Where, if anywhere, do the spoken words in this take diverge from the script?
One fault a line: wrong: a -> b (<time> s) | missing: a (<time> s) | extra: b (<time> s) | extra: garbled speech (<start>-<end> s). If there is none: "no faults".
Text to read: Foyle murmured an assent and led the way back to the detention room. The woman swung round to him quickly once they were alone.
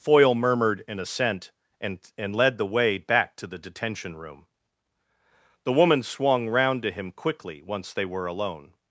extra: and (2.2 s)